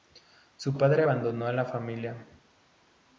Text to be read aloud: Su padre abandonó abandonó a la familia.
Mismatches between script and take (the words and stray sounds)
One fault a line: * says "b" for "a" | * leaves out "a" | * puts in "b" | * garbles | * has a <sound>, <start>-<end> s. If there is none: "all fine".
* leaves out "abandonó"